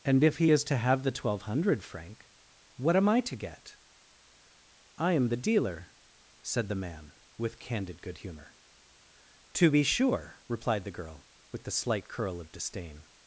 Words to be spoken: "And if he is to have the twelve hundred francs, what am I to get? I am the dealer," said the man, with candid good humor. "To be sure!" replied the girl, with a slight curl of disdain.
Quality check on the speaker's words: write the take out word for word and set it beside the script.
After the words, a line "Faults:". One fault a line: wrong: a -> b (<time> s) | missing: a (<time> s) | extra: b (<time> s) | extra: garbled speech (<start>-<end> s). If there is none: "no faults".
"And if he is to have the twelve hundred franc, what am I to get? I am the dealer," said the man, with candid good humor. "To be sure!" replied the girl, with the slight curl of disdain.
Faults:
wrong: francs -> franc (1.8 s)
wrong: a -> the (11.6 s)